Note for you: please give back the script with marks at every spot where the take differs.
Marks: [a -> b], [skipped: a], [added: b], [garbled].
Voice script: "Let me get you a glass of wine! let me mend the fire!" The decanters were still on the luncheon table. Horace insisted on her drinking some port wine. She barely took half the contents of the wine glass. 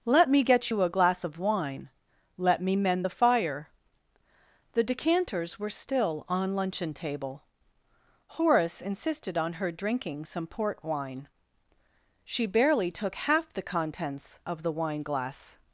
"Let me get you a glass of wine! let me mend the fire!" The decanters were still on [skipped: the] luncheon table. Horace insisted on her drinking some port wine. She barely took half the contents of the wine glass.